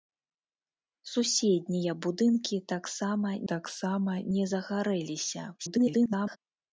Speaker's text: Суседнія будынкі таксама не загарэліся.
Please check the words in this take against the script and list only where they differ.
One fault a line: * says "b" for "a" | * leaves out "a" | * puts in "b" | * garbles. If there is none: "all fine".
* puts in "таксама"
* garbles